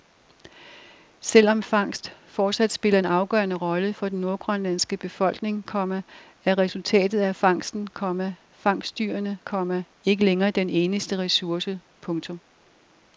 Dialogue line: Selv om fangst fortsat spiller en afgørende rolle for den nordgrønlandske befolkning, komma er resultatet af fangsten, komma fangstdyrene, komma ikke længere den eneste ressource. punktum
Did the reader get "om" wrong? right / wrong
right